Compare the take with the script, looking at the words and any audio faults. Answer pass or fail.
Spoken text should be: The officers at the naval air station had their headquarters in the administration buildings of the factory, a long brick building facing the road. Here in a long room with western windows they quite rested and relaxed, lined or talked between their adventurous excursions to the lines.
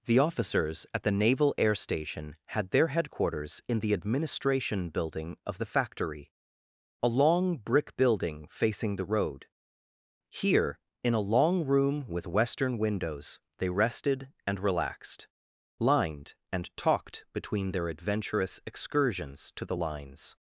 fail